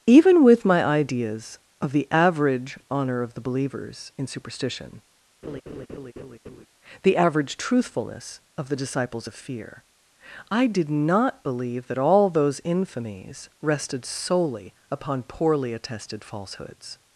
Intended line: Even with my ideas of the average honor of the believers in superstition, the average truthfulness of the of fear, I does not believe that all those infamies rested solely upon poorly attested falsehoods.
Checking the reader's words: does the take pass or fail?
fail